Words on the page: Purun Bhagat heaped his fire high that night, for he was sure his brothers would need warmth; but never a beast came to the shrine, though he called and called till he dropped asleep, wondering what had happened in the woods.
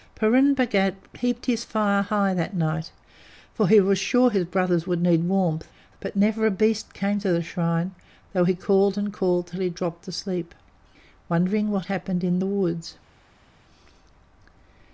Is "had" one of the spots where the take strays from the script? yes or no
yes